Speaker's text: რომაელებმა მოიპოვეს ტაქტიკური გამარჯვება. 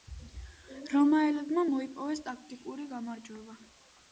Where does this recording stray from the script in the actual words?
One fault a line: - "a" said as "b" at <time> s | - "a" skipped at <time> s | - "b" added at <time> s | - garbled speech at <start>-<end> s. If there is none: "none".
none